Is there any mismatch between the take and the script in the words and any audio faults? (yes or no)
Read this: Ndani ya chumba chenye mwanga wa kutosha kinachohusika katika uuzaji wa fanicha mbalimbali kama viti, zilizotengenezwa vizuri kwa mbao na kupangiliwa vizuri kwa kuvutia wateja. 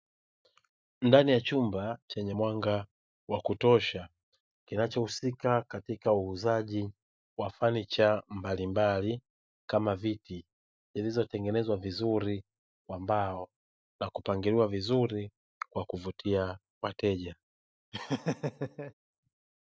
yes